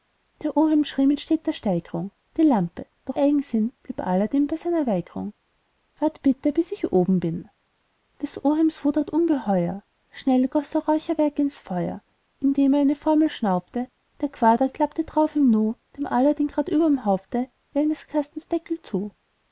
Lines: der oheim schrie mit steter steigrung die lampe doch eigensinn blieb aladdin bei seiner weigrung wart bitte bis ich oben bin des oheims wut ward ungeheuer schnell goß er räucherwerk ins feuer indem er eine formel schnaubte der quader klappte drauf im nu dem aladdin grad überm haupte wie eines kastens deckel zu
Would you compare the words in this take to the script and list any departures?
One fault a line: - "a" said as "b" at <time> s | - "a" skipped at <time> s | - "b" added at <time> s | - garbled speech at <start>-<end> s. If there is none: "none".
none